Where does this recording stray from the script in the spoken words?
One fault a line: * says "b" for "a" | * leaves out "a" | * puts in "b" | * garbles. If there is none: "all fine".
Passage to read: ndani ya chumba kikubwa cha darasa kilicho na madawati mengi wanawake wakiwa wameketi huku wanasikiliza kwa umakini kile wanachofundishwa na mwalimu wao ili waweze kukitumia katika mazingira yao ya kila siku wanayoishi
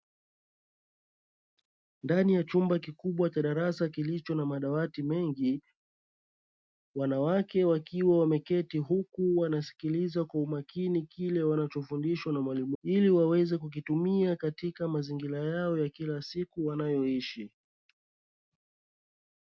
* leaves out "wao"